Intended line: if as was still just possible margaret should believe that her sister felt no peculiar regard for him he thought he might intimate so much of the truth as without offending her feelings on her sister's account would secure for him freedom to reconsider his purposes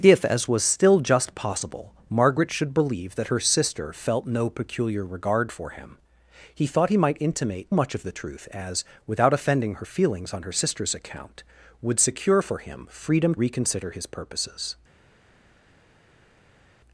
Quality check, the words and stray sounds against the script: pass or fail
fail